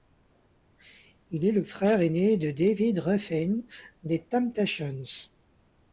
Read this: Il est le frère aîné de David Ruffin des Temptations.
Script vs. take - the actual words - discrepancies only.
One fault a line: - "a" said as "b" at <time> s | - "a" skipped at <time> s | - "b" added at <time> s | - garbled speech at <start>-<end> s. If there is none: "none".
none